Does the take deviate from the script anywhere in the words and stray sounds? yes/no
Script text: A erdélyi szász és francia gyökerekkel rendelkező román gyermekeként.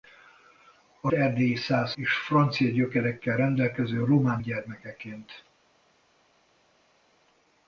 no